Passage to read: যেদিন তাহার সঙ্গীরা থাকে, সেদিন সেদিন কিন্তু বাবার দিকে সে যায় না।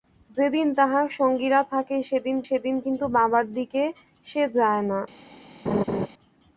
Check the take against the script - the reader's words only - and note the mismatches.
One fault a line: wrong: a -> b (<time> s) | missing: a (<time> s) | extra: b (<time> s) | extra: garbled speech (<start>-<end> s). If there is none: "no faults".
no faults